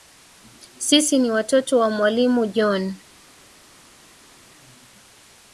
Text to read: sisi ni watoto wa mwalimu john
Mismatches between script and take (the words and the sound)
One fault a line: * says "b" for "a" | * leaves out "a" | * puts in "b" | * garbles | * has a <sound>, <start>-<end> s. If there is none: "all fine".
all fine